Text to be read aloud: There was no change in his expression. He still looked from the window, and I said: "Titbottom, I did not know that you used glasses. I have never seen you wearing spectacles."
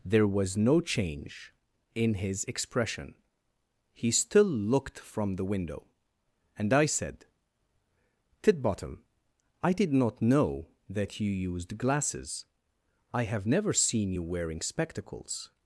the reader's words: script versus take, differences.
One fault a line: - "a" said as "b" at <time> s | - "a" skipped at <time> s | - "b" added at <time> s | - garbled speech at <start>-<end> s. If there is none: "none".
none